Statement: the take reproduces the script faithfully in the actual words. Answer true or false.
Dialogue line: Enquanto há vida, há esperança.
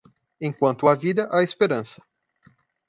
true